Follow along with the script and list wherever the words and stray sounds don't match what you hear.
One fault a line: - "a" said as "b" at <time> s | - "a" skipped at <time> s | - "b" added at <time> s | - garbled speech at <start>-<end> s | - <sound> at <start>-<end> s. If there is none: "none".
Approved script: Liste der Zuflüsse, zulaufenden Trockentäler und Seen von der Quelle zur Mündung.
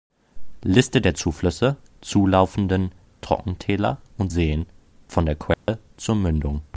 - dropout at 5.5-5.7 s